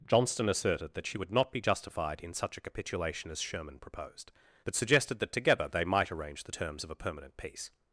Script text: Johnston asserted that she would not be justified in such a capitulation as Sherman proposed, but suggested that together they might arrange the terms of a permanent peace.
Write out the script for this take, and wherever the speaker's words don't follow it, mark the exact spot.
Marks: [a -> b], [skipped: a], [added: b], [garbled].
Johnston asserted that she would not be justified in such a capitulation as Sherman proposed, but suggested that together they might arrange the terms of a permanent peace.